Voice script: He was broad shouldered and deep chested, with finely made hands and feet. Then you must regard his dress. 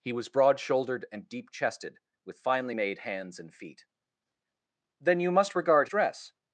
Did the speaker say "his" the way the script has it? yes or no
no